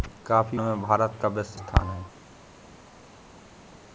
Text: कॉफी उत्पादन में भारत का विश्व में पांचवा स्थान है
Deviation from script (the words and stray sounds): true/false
true